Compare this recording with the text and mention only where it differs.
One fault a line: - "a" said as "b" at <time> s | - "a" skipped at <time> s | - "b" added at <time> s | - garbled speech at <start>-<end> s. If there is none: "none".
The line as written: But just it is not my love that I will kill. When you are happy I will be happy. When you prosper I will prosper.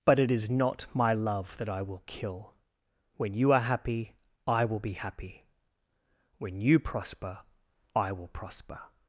- "just" skipped at 0.2 s